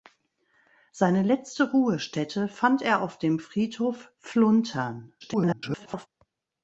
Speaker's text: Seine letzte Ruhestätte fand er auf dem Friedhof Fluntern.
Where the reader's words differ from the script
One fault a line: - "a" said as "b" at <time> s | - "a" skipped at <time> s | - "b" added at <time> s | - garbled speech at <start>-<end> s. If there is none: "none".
- garbled speech at 5.2-6.1 s